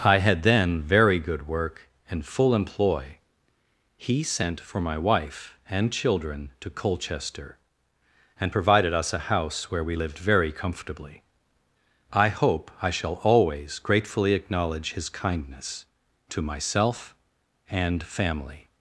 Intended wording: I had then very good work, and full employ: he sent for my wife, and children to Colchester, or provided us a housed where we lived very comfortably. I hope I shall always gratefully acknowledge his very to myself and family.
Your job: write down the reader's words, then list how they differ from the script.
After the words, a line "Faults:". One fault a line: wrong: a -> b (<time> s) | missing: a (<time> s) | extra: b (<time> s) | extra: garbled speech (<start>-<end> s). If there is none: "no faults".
I had then very good work, and full employ: he sent for my wife, and children to Colchester, and provided us a house where we lived very comfortably. I hope I shall always gratefully acknowledge his kindness to myself and family.
Faults:
wrong: or -> and (8.4 s)
wrong: housed -> house (9.2 s)
wrong: very -> kindness (15.1 s)